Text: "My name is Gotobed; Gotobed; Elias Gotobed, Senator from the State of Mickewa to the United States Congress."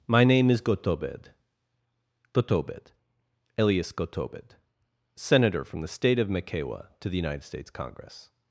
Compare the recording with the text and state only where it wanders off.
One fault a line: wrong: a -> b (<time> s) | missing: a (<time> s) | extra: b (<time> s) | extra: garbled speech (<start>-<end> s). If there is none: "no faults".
no faults